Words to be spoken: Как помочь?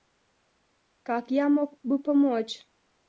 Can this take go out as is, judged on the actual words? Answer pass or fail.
fail